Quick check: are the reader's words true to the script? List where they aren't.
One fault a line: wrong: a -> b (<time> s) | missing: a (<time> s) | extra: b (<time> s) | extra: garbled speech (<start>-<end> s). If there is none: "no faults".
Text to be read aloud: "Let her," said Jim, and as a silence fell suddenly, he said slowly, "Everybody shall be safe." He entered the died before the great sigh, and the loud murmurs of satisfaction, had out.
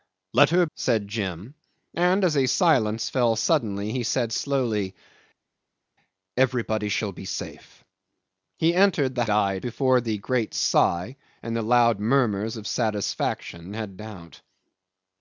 no faults